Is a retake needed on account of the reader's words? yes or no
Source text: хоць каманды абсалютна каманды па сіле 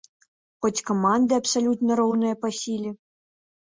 yes